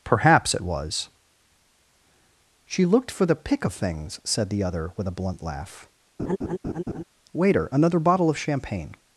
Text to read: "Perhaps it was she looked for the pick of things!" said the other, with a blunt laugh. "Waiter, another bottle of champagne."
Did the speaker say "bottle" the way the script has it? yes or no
yes